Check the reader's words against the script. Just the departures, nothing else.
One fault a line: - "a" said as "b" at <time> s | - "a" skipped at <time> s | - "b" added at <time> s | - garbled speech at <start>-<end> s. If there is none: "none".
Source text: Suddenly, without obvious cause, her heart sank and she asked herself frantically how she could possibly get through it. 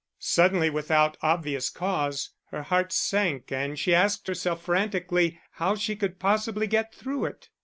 none